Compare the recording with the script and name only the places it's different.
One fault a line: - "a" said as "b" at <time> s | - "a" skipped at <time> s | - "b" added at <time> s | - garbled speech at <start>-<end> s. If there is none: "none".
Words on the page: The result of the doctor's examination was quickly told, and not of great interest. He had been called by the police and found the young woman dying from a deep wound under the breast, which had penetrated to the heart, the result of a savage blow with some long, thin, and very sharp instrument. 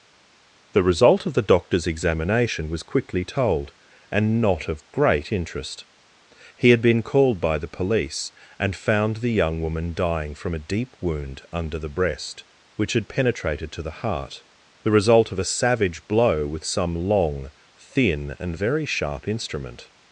none